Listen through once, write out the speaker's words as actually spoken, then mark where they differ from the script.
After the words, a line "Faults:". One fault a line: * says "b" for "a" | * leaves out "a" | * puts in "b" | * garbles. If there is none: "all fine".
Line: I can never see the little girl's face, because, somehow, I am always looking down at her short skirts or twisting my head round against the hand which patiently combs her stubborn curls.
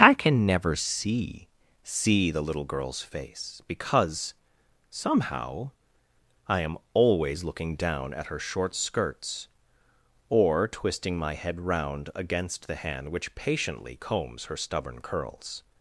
I can never see see the little girl's face, because, somehow, I am always looking down at her short skirts or twisting my head round against the hand which patiently combs her stubborn curls.
Faults:
* puts in "see"